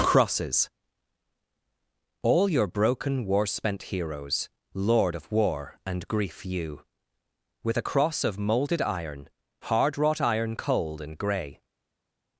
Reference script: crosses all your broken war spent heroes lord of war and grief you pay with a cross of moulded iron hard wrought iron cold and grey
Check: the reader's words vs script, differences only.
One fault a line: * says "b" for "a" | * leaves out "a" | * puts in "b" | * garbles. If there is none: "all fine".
* leaves out "pay"